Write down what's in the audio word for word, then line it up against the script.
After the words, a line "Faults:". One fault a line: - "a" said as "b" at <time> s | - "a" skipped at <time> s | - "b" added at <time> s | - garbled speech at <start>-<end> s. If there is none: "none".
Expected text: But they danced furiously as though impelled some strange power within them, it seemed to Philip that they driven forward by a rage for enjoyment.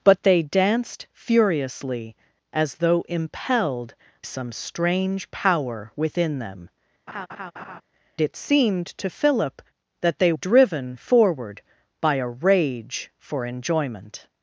But they danced furiously as though impelled some strange power within them, it seemed to Philip that they driven forward by a rage for enjoyment.
Faults:
none